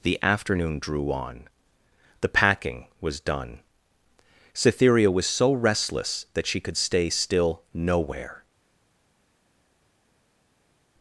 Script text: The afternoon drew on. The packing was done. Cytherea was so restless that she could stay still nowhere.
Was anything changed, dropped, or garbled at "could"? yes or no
no